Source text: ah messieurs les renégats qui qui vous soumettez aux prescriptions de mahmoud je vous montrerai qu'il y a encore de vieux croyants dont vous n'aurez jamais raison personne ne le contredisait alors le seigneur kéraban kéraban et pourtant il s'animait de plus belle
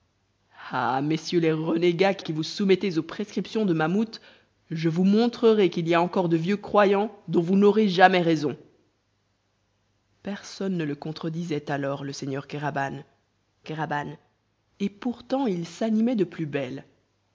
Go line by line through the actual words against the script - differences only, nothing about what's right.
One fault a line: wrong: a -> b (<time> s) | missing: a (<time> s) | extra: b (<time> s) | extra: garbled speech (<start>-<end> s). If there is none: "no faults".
no faults